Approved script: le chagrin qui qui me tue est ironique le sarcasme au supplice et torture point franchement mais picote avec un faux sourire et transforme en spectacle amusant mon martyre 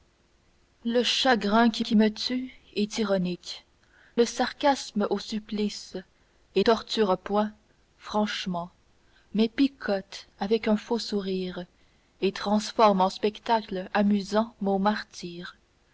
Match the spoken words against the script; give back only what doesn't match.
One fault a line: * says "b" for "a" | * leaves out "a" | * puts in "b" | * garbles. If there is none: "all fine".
all fine